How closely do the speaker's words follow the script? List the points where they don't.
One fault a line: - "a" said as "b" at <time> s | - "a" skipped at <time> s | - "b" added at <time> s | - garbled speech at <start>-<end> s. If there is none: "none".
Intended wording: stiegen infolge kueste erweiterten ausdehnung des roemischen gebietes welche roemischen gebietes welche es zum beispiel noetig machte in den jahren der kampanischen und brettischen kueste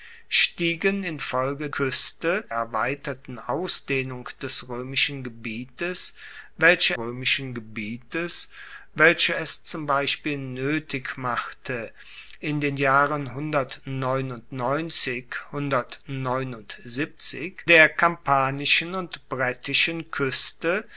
none